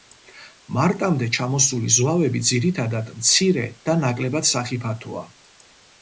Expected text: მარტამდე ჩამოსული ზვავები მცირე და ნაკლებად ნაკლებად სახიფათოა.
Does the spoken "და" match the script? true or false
true